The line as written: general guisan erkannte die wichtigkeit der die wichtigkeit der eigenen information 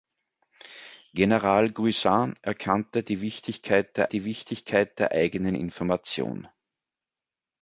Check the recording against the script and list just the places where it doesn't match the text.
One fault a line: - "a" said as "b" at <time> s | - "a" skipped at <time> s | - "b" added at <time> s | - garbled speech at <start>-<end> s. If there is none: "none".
none